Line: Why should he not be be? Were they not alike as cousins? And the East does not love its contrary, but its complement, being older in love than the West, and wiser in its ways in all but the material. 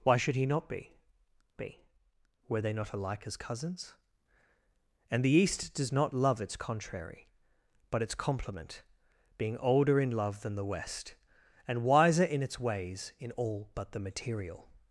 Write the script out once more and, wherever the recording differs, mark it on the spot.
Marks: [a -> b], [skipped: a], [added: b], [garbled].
Why should he not be be? Were they not alike as cousins? And the East does not love its contrary, but its complement, being older in love than the West, and wiser in its ways in all but the material.